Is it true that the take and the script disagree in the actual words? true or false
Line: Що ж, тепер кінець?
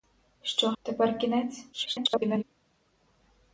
true